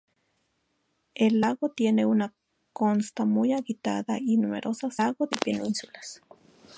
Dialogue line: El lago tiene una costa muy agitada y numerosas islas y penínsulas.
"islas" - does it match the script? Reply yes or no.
no